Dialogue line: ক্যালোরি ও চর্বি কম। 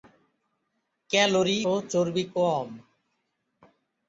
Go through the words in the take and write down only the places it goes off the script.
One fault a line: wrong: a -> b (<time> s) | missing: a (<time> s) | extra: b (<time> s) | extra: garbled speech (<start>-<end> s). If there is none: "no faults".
no faults